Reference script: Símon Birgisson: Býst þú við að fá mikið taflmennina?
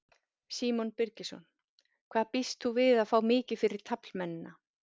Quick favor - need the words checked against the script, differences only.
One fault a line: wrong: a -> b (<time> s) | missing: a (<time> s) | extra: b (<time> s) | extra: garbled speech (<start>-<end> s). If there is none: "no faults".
extra: Hvað (2.1 s)
extra: fyrir (3.6 s)